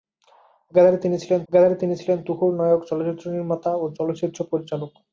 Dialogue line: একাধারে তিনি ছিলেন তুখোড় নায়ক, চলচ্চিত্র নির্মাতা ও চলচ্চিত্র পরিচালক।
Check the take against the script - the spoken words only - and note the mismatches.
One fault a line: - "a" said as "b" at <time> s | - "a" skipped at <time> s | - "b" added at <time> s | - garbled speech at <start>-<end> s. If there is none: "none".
- "একাধারে তিনি ছিলেন" added at 1.5 s